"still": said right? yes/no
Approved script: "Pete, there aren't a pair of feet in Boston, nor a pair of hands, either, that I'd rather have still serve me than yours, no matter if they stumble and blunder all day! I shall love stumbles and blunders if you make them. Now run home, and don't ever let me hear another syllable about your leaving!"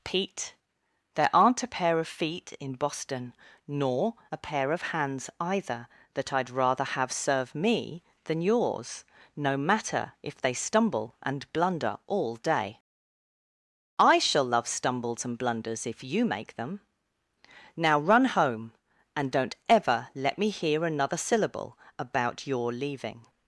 no